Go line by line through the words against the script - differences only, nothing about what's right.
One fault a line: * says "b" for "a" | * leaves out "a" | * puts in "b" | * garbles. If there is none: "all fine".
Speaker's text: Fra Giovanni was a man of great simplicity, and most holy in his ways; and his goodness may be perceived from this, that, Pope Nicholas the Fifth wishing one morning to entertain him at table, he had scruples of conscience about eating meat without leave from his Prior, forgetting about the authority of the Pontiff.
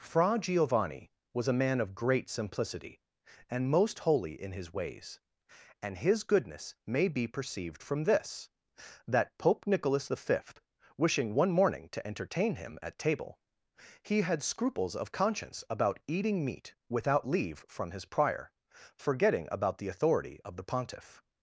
all fine